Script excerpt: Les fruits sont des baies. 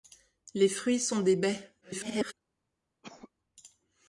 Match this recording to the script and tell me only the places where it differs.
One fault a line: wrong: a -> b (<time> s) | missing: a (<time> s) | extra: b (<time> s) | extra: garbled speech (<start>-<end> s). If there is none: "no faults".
extra: garbled speech (1.8-2.3 s)